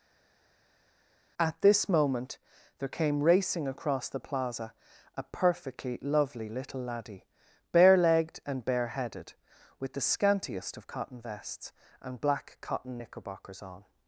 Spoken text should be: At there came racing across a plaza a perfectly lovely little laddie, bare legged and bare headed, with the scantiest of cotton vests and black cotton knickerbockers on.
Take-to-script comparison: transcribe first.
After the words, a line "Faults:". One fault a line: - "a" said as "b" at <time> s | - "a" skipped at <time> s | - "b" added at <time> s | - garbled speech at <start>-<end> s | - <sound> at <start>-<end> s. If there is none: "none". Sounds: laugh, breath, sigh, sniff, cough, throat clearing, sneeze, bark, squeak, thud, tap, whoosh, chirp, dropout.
At this moment there came racing across the plaza a perfectly lovely little laddie, bare legged and bare headed, with the scantiest of cotton vests and black cotton knickerbockers on.
Faults:
- "this moment" added at 1.6 s
- "a" said as "the" at 4.1 s